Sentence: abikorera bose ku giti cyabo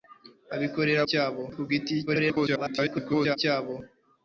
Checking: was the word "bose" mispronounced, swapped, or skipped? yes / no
yes